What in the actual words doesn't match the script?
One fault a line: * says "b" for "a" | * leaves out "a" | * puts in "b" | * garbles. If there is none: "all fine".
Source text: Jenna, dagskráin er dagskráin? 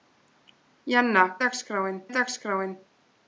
all fine